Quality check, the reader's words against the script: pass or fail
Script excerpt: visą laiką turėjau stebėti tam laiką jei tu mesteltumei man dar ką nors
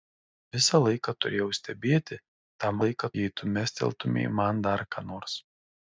pass